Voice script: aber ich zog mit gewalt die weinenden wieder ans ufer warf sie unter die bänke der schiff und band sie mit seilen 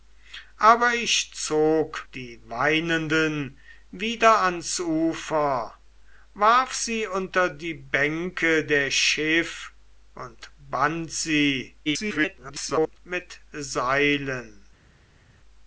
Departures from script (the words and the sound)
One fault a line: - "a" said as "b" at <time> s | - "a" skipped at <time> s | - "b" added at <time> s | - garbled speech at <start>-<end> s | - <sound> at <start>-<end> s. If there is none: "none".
- "mit gewalt" skipped at 2.1 s
- garbled speech at 11.9-13.0 s